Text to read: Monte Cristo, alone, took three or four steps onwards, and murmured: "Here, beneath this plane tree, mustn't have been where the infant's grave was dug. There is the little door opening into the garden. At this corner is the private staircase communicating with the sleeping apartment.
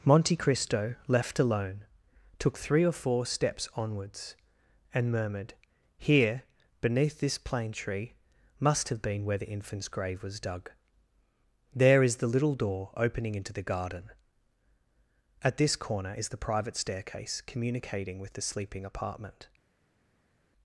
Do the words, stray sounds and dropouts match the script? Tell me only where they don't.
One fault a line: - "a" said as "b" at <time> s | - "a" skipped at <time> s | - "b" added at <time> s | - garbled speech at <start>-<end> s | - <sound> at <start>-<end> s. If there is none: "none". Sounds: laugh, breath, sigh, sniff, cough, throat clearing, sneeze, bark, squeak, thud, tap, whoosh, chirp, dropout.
- "left" added at 1.1 s
- "mustn't" said as "must" at 8.6 s